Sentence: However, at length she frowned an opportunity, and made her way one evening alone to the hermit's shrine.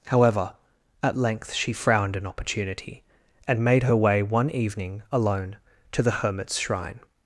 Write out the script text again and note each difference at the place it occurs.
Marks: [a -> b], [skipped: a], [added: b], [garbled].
However, at length she frowned an opportunity, and made her way one evening alone to the hermit's shrine.